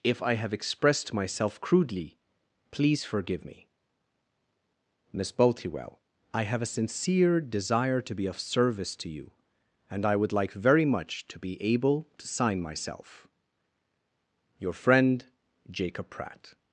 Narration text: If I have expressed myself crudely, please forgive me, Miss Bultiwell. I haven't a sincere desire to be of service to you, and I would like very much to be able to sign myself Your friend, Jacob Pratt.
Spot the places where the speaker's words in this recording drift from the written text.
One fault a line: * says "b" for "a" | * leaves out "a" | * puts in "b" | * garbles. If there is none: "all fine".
* says "have" for "haven't"